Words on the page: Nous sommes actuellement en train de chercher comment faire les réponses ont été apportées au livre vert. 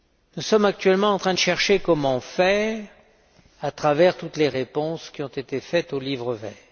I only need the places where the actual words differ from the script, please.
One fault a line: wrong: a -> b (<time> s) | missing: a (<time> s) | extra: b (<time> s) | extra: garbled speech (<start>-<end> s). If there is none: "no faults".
extra: à travers toutes (3.6 s)
extra: qui (5.1 s)